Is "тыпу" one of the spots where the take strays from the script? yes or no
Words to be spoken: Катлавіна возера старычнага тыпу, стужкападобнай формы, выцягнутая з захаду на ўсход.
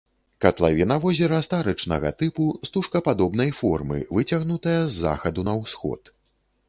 no